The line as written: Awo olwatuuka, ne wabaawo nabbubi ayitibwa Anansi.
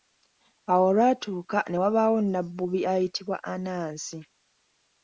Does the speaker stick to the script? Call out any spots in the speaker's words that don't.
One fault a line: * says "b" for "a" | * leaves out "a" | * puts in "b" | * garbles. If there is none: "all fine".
all fine